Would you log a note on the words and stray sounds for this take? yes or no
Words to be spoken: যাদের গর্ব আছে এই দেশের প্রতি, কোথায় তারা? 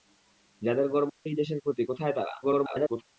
yes